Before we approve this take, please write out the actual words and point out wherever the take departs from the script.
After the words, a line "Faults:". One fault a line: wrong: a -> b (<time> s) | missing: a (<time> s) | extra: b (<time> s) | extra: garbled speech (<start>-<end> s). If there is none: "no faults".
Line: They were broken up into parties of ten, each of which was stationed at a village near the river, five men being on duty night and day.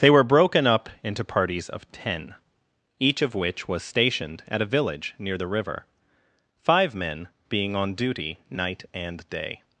They were broken up into parties of ten, each of which was stationed at a village near the river, five men being on duty night and day.
Faults:
no faults